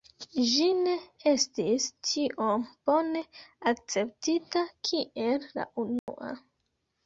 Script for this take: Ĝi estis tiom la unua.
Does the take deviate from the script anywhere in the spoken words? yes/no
yes